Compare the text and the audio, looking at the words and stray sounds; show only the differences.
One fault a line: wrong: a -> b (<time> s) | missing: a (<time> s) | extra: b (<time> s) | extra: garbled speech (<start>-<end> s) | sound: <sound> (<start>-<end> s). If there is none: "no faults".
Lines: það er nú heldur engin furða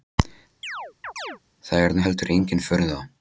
sound: chirp (0.6-1.4 s)